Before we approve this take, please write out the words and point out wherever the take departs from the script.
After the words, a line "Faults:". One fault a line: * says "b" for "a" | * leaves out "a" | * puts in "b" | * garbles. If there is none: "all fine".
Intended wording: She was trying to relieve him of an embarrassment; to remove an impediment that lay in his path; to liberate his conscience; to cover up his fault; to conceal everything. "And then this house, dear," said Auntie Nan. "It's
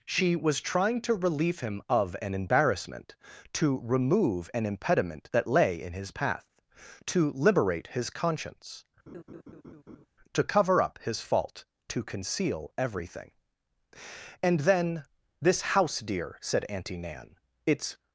She was trying to relieve him of an embarrassment; to remove an impediment that lay in his path; to liberate his conscience; to cover up his fault; to conceal everything. "And then this house, dear," said Auntie Nan. "It's
Faults:
all fine